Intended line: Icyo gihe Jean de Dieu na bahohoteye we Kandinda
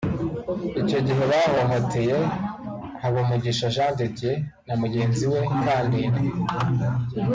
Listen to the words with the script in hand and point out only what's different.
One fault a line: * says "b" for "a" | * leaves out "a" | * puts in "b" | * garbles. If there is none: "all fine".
* puts in "bahohoteye Habumugisha"
* says "mugenzi" for "bahohoteye"